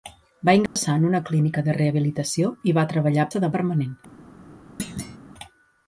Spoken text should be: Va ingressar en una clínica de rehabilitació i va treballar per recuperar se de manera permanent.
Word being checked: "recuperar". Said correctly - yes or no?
no